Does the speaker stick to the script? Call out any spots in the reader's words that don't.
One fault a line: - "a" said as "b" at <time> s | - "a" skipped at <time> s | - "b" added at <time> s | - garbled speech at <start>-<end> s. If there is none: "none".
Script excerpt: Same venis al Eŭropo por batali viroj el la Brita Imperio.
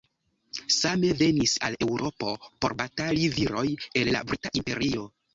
none